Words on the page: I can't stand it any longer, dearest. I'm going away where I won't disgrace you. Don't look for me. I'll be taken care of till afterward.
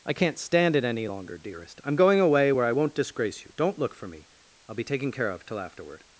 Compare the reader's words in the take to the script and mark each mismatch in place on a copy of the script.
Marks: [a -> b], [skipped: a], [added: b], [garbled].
I can't stand it any longer, dearest. I'm going away where I won't disgrace you. Don't look for me. I'll be taken care of till afterward.